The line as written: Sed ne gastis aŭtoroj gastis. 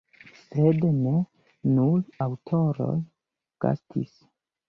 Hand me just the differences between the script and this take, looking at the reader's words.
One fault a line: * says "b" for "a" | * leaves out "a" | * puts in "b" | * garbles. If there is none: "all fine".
* says "nur" for "gastis"